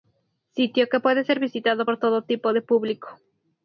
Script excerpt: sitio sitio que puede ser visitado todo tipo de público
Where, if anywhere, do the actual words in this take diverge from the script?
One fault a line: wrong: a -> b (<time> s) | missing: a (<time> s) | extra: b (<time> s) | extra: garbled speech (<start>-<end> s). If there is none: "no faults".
missing: sitio (0.9 s)
extra: por (1.8 s)